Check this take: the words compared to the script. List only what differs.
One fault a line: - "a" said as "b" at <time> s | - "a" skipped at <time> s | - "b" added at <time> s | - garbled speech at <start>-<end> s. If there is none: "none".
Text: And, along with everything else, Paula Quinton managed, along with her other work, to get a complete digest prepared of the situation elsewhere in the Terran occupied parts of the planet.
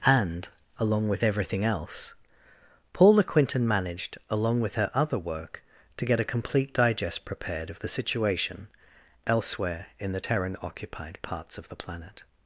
none